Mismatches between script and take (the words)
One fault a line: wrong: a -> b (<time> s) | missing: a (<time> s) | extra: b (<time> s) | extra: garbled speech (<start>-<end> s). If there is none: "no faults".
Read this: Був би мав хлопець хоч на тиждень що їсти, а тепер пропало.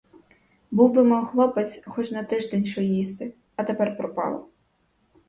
no faults